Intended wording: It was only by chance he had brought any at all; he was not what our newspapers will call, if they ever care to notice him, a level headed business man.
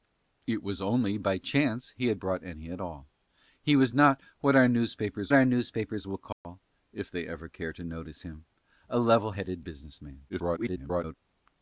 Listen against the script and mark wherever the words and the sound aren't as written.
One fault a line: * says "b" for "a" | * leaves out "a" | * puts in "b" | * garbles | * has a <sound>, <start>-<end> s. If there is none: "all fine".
* puts in "our newspapers"
* has a dropout, 6.3-6.4 s
* garbles